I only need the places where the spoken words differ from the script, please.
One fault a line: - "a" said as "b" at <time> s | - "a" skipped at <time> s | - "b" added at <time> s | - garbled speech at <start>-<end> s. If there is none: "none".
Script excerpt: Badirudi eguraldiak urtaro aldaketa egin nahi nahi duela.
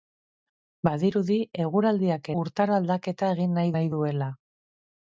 none